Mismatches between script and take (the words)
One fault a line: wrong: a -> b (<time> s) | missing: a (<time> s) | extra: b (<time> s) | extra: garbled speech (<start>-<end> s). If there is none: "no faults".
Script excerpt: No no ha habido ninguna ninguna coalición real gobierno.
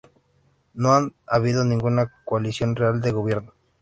missing: no (0.9 s)
missing: ninguna (2.1 s)
extra: de (3.0 s)